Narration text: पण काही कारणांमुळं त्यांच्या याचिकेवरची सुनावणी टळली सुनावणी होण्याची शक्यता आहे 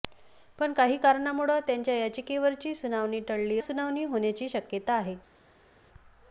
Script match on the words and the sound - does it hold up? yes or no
yes